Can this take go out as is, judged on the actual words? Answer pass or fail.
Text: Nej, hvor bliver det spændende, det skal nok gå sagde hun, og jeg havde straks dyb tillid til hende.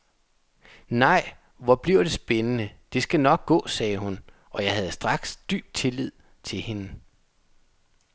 pass